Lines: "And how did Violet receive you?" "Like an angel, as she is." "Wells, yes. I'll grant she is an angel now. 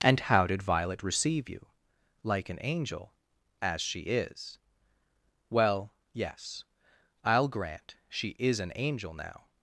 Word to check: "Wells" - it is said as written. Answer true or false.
false